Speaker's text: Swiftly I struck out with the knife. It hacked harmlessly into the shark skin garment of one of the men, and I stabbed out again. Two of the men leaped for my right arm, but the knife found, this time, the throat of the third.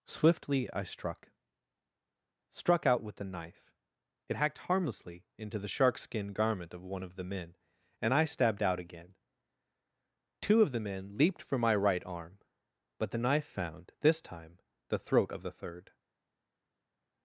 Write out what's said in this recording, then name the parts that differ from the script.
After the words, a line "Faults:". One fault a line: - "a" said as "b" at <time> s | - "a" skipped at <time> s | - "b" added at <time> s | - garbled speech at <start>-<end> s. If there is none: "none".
Swiftly I struck struck out with the knife. It hacked harmlessly into the shark skin garment of one of the men, and I stabbed out again. Two of the men leaped for my right arm, but the knife found, this time, the throat of the third.
Faults:
- "struck" added at 2.5 s